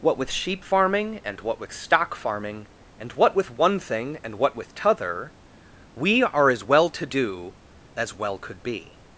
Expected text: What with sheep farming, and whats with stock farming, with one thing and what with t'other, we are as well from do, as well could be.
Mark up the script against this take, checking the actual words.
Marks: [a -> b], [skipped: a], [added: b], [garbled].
What with sheep farming, and [whats -> what] with stock farming, [added: and what] with one thing and what with t'other, we are as well [from -> to] do, as well could be.